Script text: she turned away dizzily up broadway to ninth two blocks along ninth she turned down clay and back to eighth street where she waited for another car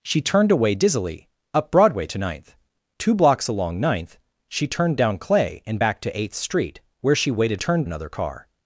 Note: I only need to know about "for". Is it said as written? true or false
false